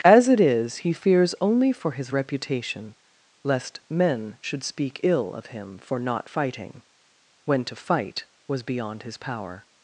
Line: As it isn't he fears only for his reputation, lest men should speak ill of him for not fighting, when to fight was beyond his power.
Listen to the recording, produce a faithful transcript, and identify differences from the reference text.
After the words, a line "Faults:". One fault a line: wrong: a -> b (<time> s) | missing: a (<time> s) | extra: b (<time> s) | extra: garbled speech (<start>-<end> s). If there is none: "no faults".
As it is he fears only for his reputation, lest men should speak ill of him for not fighting, when to fight was beyond his power.
Faults:
wrong: isn't -> is (0.4 s)